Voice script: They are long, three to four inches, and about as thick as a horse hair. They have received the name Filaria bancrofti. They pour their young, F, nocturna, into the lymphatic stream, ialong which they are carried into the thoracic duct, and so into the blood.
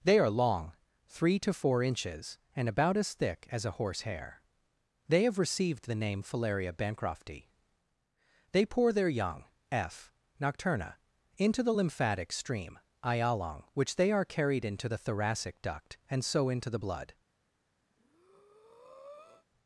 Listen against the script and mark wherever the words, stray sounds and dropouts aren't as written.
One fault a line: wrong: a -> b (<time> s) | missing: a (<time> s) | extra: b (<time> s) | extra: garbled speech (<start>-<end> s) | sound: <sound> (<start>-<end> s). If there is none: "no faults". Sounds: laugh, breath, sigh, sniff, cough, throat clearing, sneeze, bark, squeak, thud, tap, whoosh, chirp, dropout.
sound: breath (17.9-19.5 s)